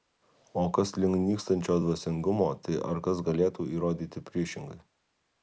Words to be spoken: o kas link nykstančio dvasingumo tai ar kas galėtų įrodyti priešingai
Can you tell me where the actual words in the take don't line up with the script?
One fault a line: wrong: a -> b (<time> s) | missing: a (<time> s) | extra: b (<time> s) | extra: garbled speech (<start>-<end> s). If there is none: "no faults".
no faults